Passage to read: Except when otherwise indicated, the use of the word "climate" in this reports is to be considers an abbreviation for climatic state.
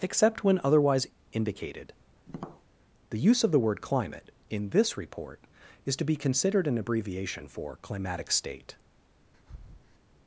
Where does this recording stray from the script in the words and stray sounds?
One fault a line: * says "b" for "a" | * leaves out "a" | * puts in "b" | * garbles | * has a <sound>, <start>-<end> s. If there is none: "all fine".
* has a tap, 2.3-2.6 s
* says "report" for "reports"
* says "considered" for "considers"
* has a breath, 9.3-10.0 s